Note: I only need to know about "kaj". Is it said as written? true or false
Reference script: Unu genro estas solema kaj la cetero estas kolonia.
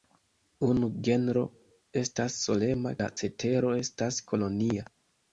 false